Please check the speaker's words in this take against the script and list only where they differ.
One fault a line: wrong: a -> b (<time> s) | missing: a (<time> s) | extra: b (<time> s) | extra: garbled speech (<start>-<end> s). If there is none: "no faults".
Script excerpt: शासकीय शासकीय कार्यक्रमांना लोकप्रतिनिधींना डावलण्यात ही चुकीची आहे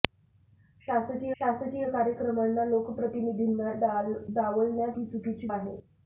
no faults